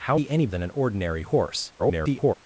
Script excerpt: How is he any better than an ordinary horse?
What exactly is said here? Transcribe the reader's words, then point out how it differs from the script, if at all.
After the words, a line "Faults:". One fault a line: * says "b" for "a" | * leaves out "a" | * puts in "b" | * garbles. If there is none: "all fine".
How he any than an ordinary horse? [garbled]
Faults:
* leaves out "is"
* leaves out "better"
* garbles